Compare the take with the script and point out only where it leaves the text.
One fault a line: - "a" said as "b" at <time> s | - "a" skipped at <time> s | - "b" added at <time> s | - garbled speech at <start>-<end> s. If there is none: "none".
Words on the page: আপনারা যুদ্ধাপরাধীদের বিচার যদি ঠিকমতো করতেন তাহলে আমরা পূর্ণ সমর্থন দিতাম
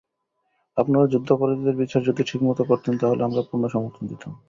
none